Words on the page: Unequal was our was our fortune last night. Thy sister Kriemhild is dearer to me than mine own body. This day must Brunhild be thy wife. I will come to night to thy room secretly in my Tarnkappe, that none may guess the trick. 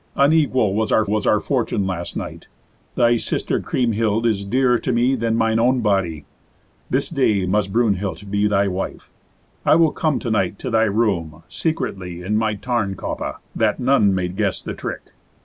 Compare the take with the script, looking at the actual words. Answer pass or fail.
pass